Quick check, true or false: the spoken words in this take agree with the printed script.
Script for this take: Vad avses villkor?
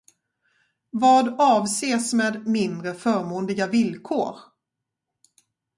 false